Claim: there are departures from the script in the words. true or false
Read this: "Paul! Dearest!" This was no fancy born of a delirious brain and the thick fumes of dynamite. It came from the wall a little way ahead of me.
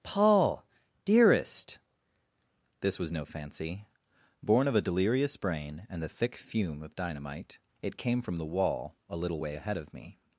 true